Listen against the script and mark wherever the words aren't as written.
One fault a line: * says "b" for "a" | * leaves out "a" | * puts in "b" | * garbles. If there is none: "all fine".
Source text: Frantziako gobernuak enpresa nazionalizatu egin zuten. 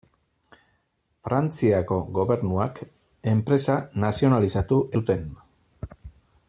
* leaves out "egin"